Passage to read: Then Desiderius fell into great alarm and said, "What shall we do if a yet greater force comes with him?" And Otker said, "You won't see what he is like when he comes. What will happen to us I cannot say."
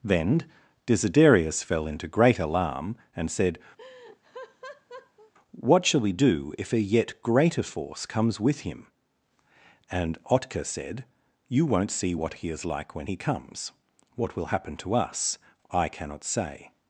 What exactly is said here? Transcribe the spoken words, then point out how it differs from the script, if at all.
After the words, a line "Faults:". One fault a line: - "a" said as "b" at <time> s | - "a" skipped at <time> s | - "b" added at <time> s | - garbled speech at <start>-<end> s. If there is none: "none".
Then Desiderius fell into great alarm and said, "What shall we do if a yet greater force comes with him?" And Otker said, "You won't see what he is like when he comes. What will happen to us I cannot say."
Faults:
none